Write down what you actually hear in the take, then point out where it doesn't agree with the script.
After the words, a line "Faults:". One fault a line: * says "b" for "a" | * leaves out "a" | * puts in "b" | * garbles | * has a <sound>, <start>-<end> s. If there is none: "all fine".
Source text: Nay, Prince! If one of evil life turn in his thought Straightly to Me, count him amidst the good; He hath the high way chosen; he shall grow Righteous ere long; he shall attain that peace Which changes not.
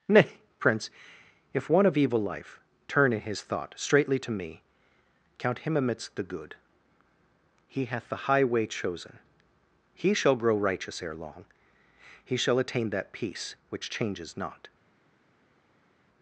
Nay, Prince! If one of evil life turn in his thought Straightly to Me, count him amidst the good; He hath the high way chosen; he shall grow Righteous ere long; he shall attain that peace Which changes not.
Faults:
all fine